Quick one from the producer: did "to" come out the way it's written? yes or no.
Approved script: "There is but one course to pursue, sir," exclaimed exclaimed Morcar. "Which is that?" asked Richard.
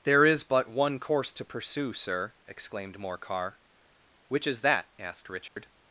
yes